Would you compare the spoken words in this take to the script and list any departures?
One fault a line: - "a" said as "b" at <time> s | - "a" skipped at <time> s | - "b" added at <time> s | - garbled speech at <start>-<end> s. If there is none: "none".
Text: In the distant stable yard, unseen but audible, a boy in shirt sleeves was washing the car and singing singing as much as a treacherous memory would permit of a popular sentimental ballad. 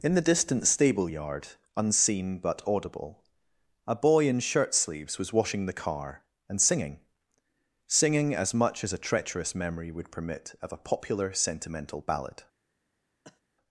none